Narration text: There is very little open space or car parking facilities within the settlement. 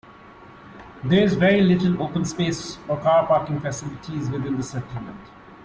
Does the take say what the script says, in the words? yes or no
yes